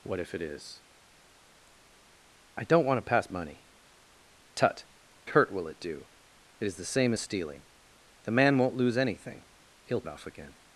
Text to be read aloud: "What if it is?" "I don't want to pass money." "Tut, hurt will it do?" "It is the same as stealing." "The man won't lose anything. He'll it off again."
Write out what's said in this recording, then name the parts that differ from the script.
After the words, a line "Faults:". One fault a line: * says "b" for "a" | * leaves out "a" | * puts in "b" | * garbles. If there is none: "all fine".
"What if it is?" "I don't want to pass money." "Tut, hurt will it do?" "It is the same as stealing." "The man won't lose anything. He'll it off again."
Faults:
all fine